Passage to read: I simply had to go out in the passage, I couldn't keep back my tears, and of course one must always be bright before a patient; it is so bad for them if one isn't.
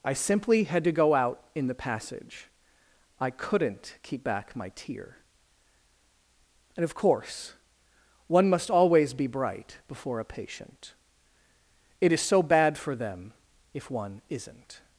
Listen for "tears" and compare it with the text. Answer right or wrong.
wrong